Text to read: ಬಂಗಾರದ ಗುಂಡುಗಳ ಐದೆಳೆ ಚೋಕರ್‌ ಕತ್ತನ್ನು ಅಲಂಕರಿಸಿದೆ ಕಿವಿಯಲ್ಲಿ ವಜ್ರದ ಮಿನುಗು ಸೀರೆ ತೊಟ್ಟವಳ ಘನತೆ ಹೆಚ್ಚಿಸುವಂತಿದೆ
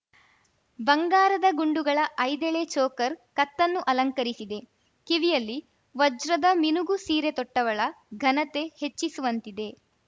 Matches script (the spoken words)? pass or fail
pass